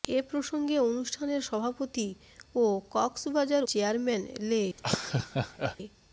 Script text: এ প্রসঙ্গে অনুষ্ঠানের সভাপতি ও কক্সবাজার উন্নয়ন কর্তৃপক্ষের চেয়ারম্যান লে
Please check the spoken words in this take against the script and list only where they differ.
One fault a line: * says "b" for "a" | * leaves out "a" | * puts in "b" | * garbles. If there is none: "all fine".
* leaves out "উন্নয়ন কর্তৃপক্ষের"